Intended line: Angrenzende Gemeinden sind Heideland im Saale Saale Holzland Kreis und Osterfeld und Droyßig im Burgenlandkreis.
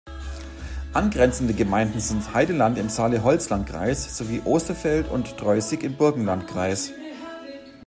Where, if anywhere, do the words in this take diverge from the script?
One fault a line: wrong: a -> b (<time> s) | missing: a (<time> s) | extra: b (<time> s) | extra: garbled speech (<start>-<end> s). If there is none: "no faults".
missing: Saale (3.2 s)
wrong: und -> sowie (4.2 s)